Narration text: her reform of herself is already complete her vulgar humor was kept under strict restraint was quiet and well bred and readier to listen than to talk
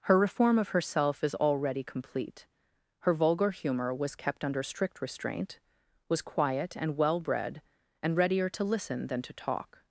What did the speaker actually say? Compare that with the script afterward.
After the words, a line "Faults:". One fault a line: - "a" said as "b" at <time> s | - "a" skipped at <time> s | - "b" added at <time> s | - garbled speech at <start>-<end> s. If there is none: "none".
her reform of herself is already complete her vulgar humor was kept under strict restraint was quiet and well bred and readier to listen than to talk
Faults:
none